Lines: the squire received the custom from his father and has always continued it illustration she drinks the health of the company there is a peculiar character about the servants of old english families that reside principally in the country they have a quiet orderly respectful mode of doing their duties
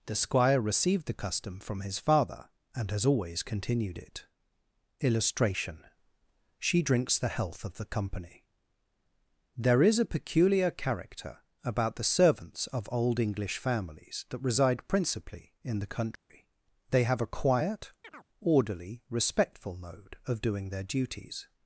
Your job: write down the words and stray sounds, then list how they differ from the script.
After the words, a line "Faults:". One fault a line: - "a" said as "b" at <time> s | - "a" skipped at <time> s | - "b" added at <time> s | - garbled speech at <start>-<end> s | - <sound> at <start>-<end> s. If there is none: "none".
the squire received the custom from his father and has always continued it illustration she drinks the health of the company there is a peculiar character about the servants of old english families that reside principally in the country they have a quiet orderly respectful mode of doing their duties
Faults:
- dropout at 16.2-16.3 s
- chirp at 18.0-18.3 s